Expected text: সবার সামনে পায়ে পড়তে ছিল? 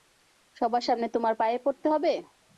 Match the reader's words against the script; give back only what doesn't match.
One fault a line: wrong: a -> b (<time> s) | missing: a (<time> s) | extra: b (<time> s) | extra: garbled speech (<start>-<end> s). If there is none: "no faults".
extra: তোমার (1.2 s)
wrong: ছিল -> হবে (1.9 s)